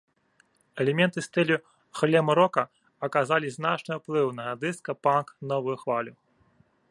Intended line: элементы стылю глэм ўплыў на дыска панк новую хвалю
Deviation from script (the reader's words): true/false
true